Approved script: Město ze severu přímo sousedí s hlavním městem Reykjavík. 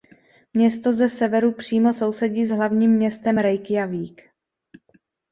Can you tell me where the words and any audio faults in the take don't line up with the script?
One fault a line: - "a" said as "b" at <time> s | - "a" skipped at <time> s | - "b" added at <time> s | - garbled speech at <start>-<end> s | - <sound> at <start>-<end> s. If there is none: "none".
none